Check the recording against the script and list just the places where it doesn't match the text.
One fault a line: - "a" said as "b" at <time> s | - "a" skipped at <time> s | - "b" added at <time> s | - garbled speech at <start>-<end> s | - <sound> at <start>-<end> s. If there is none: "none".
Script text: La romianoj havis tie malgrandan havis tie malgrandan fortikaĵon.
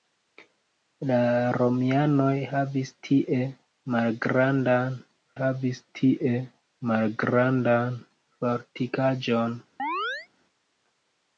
- chirp at 9.8-10.3 s